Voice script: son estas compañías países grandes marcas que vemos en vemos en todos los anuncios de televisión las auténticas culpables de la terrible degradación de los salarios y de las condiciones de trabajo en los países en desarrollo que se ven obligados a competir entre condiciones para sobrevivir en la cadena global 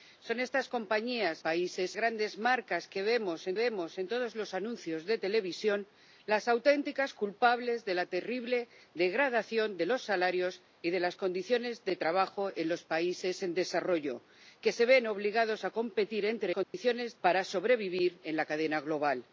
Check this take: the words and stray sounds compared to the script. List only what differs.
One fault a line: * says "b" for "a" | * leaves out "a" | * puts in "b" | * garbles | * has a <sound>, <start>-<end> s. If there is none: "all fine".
* has a dropout, 16.6-16.7 s